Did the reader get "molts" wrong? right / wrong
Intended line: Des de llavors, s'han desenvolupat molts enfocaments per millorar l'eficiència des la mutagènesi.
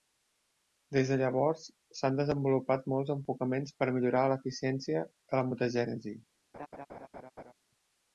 right